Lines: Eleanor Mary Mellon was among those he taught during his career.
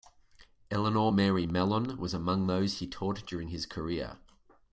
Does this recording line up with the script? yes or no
yes